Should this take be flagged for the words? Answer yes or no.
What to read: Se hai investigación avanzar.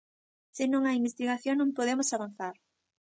yes